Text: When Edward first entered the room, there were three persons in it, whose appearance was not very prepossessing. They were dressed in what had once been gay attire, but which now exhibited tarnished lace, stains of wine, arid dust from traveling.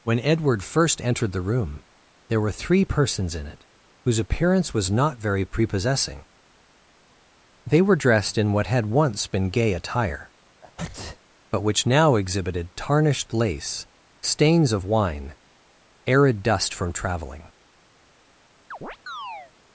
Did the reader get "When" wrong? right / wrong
right